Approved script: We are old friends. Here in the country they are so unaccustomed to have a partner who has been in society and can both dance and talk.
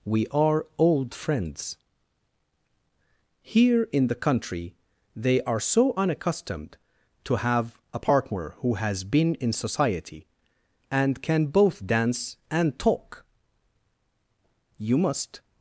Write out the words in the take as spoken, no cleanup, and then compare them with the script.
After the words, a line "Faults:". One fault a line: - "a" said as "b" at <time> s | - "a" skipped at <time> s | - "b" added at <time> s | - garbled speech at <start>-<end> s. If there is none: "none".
We are old friends. Here in the country they are so unaccustomed to have a partner who has been in society and can both dance and talk. You must
Faults:
- "You must" added at 14.8 s